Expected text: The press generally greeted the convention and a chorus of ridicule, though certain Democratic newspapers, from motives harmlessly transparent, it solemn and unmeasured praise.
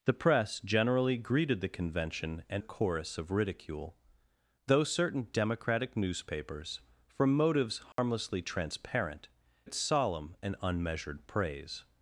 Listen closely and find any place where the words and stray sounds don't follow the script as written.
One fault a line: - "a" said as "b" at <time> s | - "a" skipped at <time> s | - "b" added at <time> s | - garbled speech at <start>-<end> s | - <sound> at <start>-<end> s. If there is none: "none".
- dropout at 7.9-8.0 s